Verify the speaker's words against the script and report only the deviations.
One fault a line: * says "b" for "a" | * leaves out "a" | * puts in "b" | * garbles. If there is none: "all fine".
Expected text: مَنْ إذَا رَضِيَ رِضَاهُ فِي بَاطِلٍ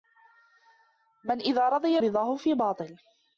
all fine